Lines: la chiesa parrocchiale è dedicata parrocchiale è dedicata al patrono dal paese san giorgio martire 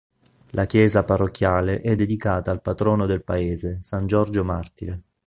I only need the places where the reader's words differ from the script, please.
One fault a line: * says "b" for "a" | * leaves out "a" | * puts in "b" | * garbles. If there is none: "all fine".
* leaves out "parrocchiale è dedicata"
* says "del" for "dal"